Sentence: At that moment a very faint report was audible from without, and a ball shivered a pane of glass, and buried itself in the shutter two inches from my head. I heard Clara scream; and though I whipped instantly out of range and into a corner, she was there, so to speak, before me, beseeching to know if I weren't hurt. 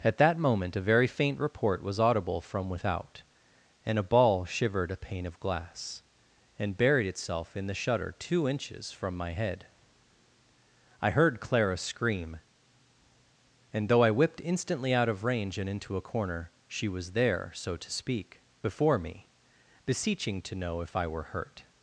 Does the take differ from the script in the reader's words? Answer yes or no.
yes